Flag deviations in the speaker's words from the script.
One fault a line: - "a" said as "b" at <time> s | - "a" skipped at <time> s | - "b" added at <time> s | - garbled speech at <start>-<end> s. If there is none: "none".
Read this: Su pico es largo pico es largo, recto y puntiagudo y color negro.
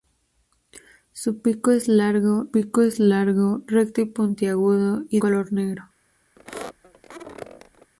none